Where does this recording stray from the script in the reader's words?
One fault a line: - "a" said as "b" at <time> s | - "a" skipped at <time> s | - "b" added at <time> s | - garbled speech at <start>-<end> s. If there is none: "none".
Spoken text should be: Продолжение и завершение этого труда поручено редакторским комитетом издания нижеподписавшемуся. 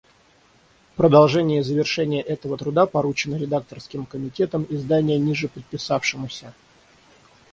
none